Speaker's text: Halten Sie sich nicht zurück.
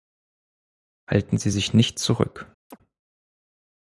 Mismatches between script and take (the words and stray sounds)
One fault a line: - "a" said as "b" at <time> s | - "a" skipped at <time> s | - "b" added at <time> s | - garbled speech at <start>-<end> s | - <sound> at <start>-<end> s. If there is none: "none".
- chirp at 2.7-2.8 s